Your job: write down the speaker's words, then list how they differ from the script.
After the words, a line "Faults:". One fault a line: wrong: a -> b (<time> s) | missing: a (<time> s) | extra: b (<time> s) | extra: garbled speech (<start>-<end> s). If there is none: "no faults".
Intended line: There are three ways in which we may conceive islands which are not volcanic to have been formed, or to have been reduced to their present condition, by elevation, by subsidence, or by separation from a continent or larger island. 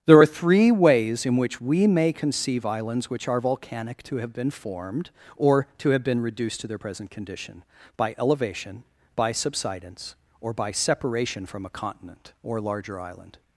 There are three ways in which we may conceive islands which are volcanic to have been formed, or to have been reduced to their present condition, by elevation, by subsidence, or by separation from a continent or larger island.
Faults:
missing: not (3.4 s)